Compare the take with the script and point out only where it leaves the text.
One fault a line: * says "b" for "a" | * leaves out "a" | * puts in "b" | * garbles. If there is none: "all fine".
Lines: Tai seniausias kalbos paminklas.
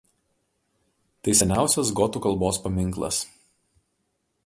* puts in "gotų"